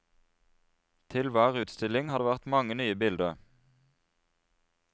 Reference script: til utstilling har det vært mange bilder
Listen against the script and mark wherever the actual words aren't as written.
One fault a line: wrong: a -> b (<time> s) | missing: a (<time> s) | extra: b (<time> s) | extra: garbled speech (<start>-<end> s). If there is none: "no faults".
extra: hver (1.4 s)
extra: nye (2.8 s)